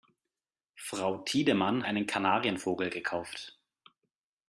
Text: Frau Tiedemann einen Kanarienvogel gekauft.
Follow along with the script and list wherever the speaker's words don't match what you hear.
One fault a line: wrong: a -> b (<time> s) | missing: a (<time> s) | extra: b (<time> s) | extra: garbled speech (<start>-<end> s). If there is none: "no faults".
no faults